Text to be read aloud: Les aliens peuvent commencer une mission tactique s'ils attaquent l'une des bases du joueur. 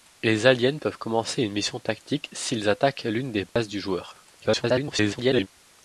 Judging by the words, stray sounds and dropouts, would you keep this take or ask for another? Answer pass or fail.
fail